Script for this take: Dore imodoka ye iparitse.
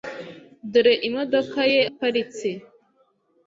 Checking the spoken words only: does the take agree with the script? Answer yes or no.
yes